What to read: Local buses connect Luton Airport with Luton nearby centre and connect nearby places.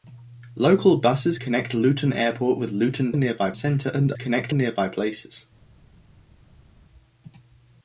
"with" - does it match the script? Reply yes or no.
yes